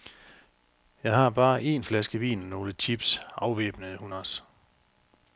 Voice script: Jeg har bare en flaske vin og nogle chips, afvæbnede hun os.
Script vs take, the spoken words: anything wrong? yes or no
no